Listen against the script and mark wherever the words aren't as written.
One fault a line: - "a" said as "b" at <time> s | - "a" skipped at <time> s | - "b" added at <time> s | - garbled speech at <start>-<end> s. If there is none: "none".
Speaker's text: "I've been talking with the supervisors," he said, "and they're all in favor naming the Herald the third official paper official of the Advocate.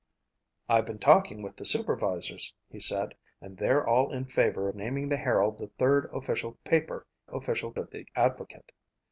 none